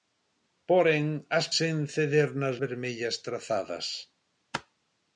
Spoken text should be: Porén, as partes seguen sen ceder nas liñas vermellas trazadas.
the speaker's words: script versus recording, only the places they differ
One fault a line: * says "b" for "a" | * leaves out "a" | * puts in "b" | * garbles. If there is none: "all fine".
* leaves out "partes seguen"
* leaves out "liñas"